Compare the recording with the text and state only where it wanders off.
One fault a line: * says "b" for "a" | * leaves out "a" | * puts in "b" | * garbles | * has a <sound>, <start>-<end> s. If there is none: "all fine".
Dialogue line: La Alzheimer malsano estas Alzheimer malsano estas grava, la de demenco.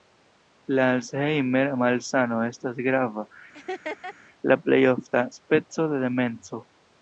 * says "grava la plej ofta speco" for "Alzheimer malsano estas grava la"
* has a laugh, 3.5-4.1 s